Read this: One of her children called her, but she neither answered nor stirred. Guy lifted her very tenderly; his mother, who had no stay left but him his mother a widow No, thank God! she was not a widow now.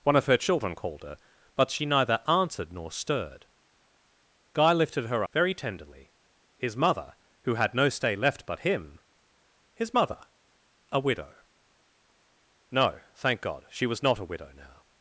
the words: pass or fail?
pass